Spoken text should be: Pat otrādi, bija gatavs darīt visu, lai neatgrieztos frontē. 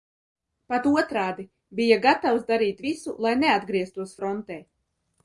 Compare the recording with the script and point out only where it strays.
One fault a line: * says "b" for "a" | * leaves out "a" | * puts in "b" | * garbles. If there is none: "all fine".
all fine